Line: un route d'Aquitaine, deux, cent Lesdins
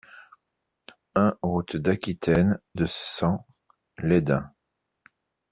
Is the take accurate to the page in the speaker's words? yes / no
yes